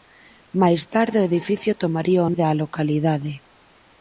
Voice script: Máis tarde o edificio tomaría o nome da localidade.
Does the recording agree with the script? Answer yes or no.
no